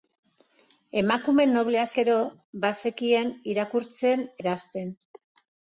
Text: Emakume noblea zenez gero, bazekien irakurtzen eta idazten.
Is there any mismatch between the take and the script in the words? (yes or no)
yes